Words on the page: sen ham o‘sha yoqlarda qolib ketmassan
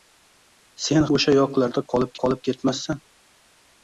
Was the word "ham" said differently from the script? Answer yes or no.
yes